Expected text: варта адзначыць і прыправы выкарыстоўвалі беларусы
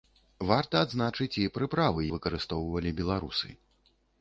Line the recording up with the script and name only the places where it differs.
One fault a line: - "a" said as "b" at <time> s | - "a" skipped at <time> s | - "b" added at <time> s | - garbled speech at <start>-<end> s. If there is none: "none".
none